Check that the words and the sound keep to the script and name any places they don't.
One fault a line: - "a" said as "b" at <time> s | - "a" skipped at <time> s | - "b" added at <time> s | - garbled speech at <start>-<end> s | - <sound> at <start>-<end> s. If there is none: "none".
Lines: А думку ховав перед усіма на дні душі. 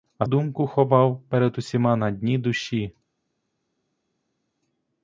none